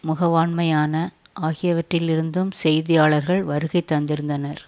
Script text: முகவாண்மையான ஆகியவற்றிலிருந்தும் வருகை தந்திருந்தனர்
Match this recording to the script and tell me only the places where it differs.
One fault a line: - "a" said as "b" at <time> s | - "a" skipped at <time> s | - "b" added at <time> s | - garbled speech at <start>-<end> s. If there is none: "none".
- "செய்தியாளர்கள்" added at 2.6 s